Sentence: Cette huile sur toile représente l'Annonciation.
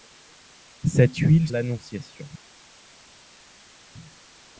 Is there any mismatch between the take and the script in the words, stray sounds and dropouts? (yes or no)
yes